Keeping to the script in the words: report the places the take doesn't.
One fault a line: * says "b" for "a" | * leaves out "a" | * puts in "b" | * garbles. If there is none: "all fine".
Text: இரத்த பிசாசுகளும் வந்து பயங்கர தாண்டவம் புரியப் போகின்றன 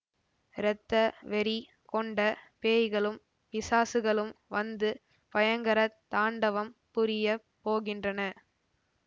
* puts in "வெறி கொண்ட பேய்களும்"